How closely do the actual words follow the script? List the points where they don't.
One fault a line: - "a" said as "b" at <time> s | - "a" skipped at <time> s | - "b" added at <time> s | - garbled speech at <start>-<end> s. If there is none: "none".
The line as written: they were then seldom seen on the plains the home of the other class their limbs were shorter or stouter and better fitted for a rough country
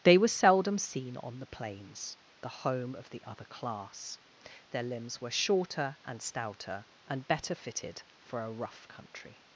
- "then" skipped at 0.3 s
- "or" said as "and" at 6.0 s